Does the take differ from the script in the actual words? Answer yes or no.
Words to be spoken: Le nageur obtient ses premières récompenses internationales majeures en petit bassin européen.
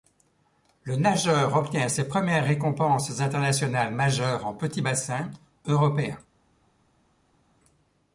no